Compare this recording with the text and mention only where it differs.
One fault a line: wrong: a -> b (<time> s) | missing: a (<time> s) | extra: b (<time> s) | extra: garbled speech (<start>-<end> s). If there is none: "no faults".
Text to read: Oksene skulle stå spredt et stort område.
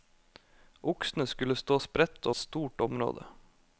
no faults